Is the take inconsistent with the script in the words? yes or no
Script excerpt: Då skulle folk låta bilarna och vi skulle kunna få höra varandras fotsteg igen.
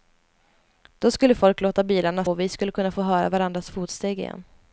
no